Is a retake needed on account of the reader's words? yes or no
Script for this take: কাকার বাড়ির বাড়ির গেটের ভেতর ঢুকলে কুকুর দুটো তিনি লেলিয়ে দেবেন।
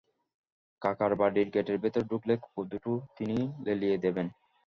yes